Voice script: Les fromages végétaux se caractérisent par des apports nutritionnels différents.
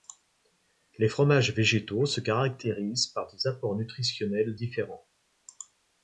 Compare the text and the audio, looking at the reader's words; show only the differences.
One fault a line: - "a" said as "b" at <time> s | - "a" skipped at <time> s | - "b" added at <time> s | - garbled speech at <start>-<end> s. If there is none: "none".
none